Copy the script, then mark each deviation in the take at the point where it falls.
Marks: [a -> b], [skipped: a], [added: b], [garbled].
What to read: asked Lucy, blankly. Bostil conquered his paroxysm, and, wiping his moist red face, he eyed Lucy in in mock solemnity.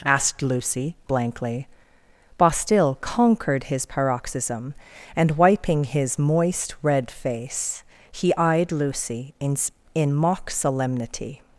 asked Lucy, blankly. Bostil conquered his paroxysm, and, wiping his moist red face, he eyed Lucy in in mock solemnity.